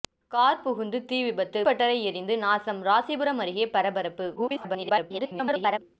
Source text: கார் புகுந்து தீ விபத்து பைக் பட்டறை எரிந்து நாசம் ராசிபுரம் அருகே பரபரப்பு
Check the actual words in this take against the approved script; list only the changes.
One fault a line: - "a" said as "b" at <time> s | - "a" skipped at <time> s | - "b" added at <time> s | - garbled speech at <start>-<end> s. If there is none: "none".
- "பைக்" skipped at 1.6 s
- garbled speech at 4.4-5.8 s